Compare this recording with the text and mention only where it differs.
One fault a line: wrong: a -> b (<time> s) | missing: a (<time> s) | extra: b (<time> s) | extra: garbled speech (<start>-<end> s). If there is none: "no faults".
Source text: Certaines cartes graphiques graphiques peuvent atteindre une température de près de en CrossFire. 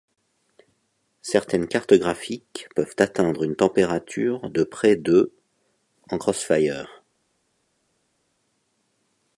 missing: graphiques (2.7 s)